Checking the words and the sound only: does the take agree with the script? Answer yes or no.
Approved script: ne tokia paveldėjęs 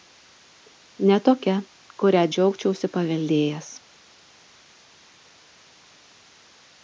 no